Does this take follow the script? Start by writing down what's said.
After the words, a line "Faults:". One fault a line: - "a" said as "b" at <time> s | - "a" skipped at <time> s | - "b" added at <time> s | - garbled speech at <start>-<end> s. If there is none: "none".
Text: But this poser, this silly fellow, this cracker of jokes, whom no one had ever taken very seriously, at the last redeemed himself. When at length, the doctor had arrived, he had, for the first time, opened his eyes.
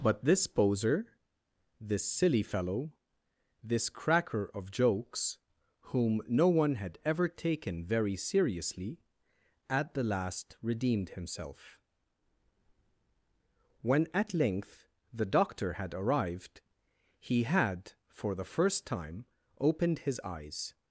But this poser, this silly fellow, this cracker of jokes, whom no one had ever taken very seriously, at the last redeemed himself. When at length, the doctor had arrived, he had, for the first time, opened his eyes.
Faults:
none